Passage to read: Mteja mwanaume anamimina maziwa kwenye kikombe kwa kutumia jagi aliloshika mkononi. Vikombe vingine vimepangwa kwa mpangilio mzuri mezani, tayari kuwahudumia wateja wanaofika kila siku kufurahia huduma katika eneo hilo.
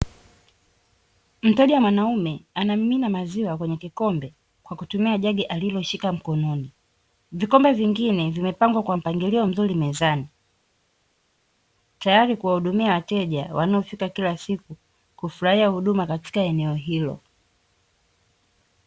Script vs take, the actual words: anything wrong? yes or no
no